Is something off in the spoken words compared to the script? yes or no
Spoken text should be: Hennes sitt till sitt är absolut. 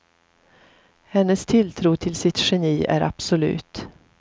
yes